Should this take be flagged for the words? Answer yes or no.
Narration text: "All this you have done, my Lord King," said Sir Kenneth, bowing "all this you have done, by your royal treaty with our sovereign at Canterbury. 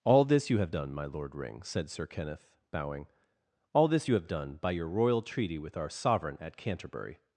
yes